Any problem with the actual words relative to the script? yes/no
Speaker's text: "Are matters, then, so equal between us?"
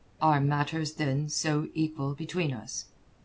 no